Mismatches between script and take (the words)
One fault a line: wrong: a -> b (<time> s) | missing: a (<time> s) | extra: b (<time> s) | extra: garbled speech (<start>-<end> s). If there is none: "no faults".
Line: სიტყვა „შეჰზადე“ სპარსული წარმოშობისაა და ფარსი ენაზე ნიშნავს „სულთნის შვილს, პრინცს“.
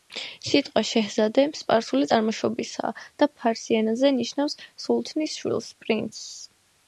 no faults